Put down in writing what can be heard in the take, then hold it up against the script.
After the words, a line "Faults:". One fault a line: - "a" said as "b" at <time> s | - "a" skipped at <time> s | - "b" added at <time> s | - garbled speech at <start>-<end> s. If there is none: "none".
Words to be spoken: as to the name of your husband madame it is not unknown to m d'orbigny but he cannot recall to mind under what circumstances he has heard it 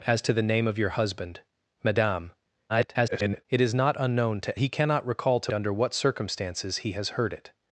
as to the name of your husband madame [garbled] it is not unknown to he cannot recall to under what circumstances he has heard it
Faults:
- garbled speech at 2.7-3.5 s
- "m d'orbigny but" skipped at 4.6 s
- "mind" skipped at 5.5 s